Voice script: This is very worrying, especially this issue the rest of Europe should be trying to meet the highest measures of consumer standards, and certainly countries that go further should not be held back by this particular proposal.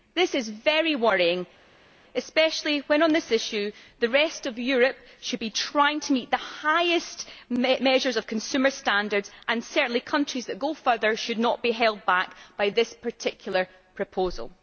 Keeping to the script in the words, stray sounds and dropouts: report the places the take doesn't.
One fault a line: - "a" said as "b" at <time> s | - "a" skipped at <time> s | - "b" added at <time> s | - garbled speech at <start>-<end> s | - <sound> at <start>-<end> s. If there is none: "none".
- "when on" added at 2.9 s